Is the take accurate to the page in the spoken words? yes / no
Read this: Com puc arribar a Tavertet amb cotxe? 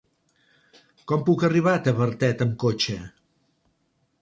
yes